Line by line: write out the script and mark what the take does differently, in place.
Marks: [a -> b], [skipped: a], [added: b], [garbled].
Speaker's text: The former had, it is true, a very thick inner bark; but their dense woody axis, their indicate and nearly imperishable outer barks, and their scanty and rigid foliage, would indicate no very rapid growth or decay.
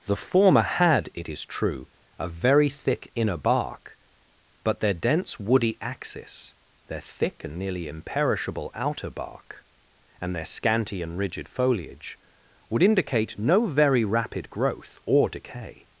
The former had, it is true, a very thick inner bark; but their dense woody axis, their [indicate -> thick] and nearly imperishable outer [barks, -> bark] and their scanty and rigid foliage, would indicate no very rapid growth or decay.